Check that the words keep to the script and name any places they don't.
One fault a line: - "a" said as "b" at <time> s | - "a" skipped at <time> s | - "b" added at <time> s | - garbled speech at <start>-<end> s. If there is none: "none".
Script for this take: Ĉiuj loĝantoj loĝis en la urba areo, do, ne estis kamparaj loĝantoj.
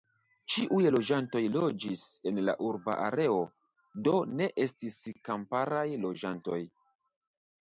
none